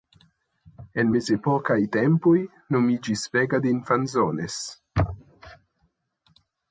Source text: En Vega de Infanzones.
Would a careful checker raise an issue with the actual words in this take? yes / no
yes